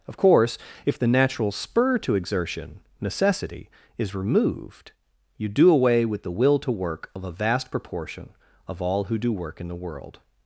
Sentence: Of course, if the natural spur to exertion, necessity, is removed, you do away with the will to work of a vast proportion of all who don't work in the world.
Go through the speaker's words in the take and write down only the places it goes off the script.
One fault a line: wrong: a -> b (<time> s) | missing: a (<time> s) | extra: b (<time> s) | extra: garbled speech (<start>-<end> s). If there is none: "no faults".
wrong: don't -> do (9.2 s)